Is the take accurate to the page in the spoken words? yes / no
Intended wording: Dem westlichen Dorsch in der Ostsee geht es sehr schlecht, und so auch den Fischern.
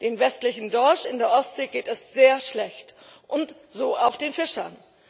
yes